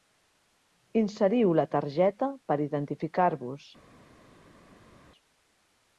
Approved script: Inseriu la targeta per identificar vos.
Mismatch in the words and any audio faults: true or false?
false